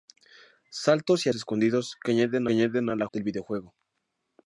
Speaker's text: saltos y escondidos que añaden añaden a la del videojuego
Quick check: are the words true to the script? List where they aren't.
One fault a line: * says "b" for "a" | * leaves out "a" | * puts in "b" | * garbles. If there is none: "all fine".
all fine